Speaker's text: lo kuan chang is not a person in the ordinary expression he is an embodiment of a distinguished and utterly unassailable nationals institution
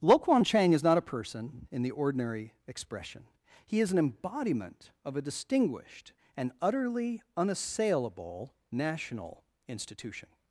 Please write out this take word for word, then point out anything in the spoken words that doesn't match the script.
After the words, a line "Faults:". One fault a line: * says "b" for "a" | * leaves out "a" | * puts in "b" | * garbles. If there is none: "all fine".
lo kuan chang is not a person in the ordinary expression he is an embodiment of a distinguished and utterly unassailable national institution
Faults:
* says "national" for "nationals"